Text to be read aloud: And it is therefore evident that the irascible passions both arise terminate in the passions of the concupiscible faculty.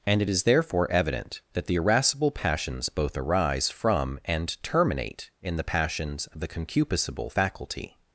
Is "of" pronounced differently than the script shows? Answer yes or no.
no